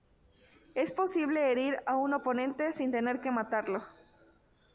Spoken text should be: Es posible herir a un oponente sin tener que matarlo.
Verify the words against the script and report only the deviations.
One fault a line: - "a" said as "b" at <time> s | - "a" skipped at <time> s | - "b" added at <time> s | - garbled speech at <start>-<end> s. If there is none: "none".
none